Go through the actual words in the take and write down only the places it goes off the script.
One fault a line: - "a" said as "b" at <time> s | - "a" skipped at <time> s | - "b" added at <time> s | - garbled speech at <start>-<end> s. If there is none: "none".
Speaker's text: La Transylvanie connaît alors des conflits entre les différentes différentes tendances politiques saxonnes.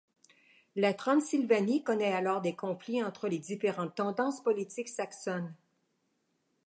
- "différentes" skipped at 3.9 s